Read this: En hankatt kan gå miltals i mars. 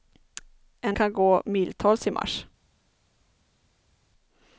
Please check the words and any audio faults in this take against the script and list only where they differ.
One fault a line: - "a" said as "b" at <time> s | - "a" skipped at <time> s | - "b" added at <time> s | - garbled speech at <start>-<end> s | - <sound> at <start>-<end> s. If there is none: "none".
- "hankatt" skipped at 1.0 s